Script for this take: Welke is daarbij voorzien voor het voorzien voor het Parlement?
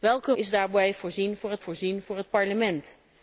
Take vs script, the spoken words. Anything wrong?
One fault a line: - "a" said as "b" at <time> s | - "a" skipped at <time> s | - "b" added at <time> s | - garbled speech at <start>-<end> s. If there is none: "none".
none